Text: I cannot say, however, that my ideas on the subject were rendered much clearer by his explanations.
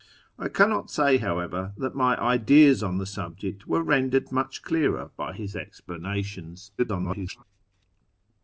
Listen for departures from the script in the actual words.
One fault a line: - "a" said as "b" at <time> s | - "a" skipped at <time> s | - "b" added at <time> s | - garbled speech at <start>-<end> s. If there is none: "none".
- garbled speech at 6.8-7.4 s